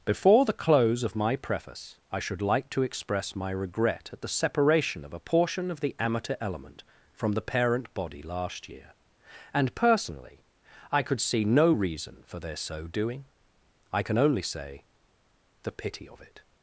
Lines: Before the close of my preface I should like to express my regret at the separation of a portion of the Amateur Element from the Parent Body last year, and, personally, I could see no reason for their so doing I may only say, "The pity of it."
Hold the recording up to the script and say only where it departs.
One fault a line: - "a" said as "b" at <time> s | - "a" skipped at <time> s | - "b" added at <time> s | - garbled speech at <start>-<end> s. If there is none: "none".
- "may" said as "can" at 14.0 s